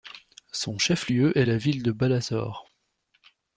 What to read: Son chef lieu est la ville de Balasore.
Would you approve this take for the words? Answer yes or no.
yes